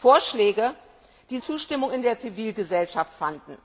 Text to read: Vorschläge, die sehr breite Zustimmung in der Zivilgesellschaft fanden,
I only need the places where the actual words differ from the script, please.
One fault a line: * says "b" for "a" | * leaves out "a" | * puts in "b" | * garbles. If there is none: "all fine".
* leaves out "sehr breite"